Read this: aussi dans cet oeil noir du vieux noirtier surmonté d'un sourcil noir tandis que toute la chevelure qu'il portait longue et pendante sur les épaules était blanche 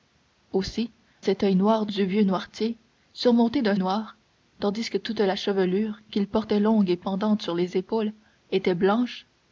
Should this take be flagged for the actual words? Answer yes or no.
yes